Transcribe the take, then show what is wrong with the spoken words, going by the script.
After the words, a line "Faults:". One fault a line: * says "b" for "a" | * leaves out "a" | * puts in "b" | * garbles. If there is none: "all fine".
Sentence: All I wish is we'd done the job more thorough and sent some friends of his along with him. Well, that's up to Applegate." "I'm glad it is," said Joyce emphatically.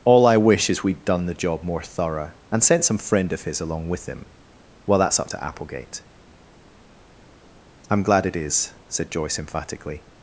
All I wish is we'd done the job more thorough and sent some friend of his along with him. Well, that's up to Applegate." "I'm glad it is," said Joyce emphatically.
Faults:
* says "friend" for "friends"